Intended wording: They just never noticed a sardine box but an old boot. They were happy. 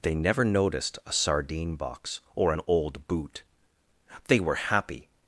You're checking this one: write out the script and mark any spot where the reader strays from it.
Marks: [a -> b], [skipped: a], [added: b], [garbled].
They [skipped: just] never noticed a sardine box [but -> or] an old boot. They were happy.